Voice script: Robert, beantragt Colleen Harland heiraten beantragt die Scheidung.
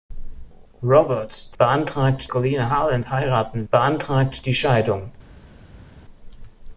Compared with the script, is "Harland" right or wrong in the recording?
right